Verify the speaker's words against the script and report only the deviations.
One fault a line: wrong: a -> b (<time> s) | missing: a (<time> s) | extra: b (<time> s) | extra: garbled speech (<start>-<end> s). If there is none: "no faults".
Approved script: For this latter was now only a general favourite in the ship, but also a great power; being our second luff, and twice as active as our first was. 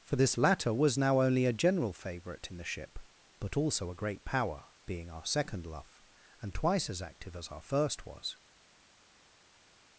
no faults